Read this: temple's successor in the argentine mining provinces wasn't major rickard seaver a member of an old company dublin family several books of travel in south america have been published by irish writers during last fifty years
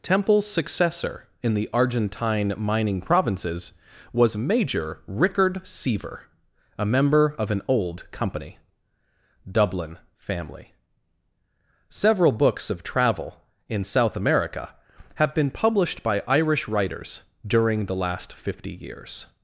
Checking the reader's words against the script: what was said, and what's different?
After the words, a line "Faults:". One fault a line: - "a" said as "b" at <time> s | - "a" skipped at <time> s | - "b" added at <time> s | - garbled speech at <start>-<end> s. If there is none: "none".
temple's successor in the argentine mining provinces was major rickard seaver a member of an old company dublin family several books of travel in south america have been published by irish writers during the last fifty years
Faults:
- "wasn't" said as "was" at 4.1 s
- "the" added at 17.8 s